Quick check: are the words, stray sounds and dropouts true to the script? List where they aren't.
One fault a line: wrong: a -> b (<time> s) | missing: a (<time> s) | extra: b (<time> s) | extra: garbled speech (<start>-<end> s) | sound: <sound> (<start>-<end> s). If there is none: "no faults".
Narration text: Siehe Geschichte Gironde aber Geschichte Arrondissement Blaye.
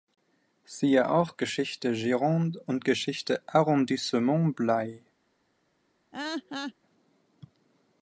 extra: auch (1.1 s)
wrong: aber -> und (2.6 s)
sound: laugh (6.1-6.7 s)